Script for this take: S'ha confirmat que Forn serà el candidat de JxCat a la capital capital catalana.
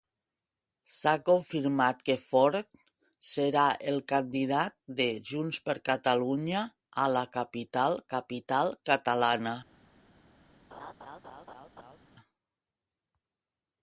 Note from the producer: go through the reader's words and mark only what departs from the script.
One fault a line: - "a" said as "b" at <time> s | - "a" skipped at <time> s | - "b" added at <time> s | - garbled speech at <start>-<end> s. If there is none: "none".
none